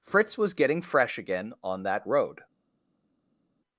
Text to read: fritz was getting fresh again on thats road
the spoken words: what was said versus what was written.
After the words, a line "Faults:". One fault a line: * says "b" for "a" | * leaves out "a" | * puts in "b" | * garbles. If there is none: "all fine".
fritz was getting fresh again on that road
Faults:
* says "that" for "thats"